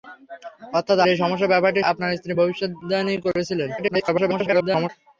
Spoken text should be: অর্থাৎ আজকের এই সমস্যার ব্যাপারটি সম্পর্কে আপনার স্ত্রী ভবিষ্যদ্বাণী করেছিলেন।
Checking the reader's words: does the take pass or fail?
fail